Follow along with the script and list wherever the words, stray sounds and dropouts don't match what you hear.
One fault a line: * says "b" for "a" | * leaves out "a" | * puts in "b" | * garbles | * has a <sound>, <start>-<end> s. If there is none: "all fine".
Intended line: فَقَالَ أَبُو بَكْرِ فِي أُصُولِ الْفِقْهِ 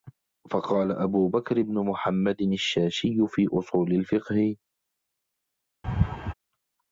* puts in "بْنُ مُحَمَّدٍ الشَّاشِيُّ"
* has a laugh, 5.8-6.3 s